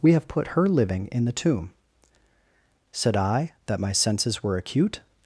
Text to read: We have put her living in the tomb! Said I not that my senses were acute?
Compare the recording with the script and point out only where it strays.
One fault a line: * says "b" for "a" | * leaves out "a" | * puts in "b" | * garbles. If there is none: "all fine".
* leaves out "not"